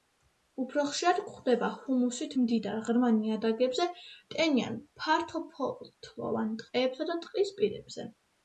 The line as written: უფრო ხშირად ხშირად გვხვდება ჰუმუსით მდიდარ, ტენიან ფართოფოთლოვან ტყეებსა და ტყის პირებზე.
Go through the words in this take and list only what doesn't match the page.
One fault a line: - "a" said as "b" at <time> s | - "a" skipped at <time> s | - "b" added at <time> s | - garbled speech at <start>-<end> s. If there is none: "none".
- "ხშირად" skipped at 1.2 s
- "ღრმა ნიადაგებზე" added at 2.9 s